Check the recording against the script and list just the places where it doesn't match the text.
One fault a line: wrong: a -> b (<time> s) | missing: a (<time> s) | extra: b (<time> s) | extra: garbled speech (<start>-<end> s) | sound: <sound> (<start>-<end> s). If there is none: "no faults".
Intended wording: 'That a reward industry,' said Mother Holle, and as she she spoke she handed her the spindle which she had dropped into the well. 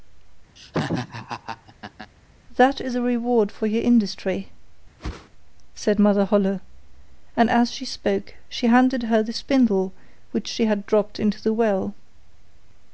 sound: laugh (0.6-2.1 s)
extra: is (2.8 s)
extra: for your (3.5 s)
sound: whoosh (5.0-5.3 s)
missing: she (7.8 s)